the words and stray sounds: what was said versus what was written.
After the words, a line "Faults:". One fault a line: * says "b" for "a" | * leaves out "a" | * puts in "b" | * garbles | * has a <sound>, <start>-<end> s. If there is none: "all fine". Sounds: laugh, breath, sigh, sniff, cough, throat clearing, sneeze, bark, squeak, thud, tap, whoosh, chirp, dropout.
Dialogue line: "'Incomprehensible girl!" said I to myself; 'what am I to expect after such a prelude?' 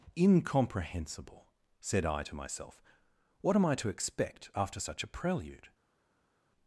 "'Incomprehensible!" said I to myself; 'what am I to expect after such a prelude?'
Faults:
* leaves out "girl"